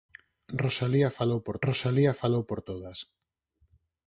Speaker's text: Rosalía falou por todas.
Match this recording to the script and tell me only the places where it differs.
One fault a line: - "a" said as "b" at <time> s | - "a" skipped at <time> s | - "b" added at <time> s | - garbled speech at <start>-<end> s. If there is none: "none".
- "rosalía falou por" added at 1.7 s